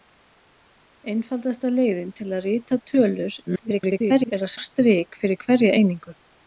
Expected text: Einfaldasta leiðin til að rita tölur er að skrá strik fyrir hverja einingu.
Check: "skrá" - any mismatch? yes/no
yes